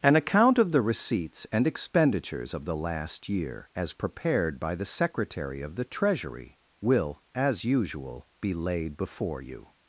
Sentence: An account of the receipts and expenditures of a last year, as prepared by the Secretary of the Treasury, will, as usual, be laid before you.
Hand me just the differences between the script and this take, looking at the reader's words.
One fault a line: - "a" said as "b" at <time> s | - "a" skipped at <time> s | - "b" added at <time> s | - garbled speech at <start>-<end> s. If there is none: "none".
- "a" said as "the" at 2.6 s